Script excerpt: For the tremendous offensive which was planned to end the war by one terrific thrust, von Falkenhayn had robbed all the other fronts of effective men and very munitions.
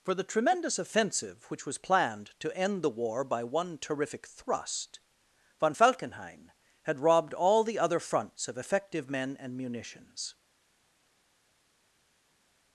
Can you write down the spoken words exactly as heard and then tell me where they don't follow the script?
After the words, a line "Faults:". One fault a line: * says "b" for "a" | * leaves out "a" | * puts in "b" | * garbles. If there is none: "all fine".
For the tremendous offensive which was planned to end the war by one terrific thrust, von Falkenhayn had robbed all the other fronts of effective men and munitions.
Faults:
* leaves out "very"